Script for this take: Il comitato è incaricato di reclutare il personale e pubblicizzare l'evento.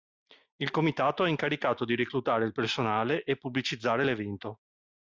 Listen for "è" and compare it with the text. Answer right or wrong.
right